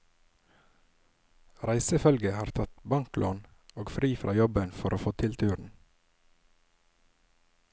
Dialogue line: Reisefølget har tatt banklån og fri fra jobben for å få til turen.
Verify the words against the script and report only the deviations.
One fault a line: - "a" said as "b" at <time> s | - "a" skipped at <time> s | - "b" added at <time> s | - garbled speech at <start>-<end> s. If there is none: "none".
none